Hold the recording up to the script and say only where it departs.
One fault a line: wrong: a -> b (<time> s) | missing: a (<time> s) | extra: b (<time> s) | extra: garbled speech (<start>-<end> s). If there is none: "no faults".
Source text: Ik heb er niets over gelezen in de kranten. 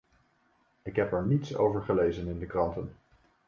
no faults